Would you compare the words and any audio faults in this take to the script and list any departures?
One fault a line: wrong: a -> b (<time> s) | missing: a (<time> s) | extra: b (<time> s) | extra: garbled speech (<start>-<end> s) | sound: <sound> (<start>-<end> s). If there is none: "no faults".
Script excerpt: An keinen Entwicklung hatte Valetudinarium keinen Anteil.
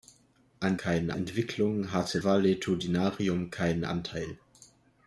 no faults